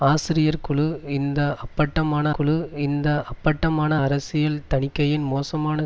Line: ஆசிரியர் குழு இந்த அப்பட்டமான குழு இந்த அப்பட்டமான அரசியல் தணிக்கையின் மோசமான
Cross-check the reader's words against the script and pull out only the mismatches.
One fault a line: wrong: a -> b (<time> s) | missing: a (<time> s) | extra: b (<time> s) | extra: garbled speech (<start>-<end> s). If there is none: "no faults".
no faults